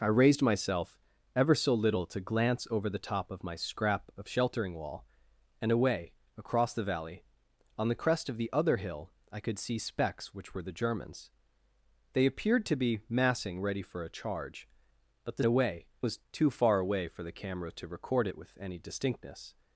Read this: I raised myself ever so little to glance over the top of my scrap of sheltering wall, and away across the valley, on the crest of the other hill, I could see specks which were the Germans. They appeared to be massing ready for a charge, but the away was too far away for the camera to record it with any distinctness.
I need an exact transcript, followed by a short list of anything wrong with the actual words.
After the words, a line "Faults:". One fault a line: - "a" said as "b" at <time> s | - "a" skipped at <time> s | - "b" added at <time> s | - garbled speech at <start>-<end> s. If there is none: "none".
I raised myself ever so little to glance over the top of my scrap of sheltering wall, and away across the valley, on the crest of the other hill, I could see specks which were the Germans. They appeared to be massing ready for a charge, but the away was too far away for the camera to record it with any distinctness.
Faults:
none